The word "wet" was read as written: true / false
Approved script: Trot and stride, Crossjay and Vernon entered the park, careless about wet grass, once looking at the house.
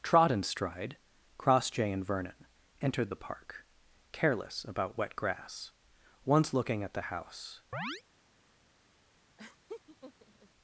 true